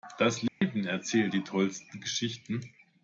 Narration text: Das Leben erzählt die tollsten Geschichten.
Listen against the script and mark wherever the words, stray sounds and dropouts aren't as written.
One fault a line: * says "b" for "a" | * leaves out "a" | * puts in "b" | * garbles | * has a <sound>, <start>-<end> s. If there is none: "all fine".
* has a dropout, 0.5-0.6 s